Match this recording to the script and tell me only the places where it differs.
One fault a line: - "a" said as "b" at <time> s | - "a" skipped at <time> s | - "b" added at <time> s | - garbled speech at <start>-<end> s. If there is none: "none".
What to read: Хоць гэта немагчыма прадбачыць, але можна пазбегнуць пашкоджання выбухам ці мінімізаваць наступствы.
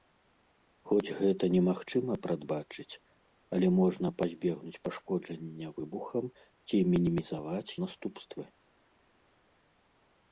none